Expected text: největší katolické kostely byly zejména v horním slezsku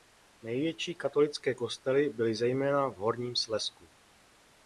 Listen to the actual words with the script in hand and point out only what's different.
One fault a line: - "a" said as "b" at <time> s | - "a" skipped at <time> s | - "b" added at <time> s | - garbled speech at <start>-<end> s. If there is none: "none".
none